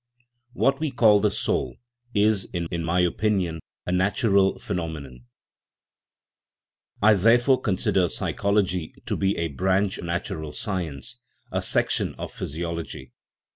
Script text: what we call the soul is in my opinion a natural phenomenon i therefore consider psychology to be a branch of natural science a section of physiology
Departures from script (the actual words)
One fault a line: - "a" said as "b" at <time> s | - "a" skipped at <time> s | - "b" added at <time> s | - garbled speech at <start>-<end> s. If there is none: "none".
- "in" added at 2.6 s
- "of" skipped at 10.0 s